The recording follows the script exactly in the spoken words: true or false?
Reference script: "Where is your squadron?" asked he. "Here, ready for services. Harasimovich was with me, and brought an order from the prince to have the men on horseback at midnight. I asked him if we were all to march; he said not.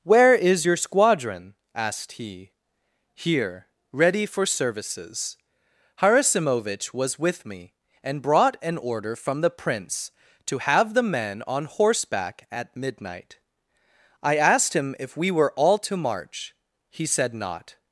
true